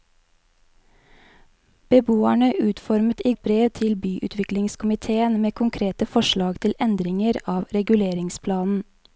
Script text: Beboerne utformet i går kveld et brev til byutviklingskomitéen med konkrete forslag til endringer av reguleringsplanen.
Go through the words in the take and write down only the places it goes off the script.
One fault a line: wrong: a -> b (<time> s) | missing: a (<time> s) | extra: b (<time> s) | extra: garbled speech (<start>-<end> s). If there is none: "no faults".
missing: går kveld (3.3 s)